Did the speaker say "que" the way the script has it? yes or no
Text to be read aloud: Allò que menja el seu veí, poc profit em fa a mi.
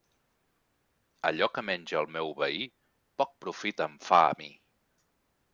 yes